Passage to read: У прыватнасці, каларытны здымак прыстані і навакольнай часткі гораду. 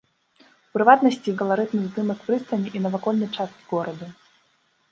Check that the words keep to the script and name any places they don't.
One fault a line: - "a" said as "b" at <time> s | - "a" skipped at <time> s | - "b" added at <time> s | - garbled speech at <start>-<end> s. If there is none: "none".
none